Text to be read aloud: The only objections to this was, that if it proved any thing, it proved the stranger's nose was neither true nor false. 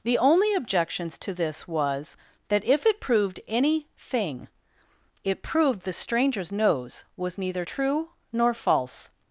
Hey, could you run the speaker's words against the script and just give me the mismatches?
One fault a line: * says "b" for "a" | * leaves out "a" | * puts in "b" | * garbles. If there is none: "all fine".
all fine